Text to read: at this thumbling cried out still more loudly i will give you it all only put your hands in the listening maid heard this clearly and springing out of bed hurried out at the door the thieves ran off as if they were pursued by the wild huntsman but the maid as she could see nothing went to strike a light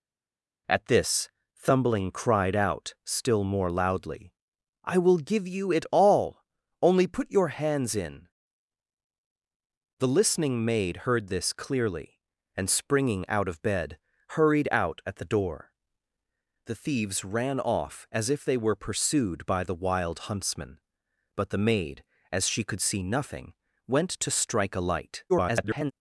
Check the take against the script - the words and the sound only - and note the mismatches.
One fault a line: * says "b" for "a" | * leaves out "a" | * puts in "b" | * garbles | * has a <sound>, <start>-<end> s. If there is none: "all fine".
* garbles